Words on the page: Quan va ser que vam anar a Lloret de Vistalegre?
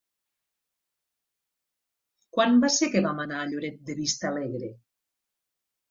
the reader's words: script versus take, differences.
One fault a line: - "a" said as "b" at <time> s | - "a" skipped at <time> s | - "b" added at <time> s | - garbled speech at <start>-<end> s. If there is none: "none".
none